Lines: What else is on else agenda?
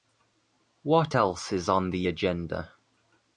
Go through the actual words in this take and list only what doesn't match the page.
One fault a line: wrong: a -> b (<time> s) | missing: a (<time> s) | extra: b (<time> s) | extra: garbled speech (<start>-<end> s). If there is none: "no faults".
wrong: else -> the (1.9 s)